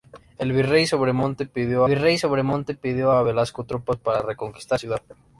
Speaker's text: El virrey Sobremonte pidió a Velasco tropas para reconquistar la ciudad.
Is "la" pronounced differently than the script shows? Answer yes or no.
yes